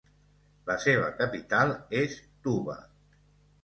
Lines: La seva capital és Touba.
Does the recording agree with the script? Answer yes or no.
yes